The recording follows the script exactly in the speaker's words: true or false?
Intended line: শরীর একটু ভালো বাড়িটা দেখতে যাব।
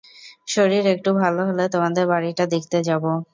false